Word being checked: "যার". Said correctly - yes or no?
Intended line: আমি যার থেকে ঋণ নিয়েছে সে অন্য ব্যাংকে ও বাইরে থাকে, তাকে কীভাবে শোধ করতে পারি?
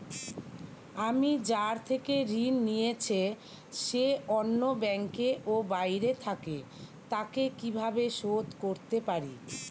yes